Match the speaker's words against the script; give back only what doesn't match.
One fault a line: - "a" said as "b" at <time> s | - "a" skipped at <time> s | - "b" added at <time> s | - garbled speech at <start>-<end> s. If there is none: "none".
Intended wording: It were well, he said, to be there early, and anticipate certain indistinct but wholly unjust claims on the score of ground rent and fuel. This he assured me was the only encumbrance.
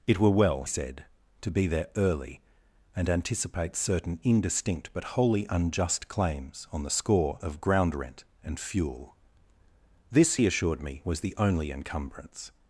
- "he" skipped at 0.6 s